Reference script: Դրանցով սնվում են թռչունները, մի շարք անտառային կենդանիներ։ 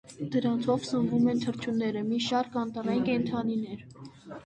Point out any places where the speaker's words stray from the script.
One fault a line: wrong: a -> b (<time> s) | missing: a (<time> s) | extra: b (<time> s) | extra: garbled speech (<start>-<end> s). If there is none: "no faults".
no faults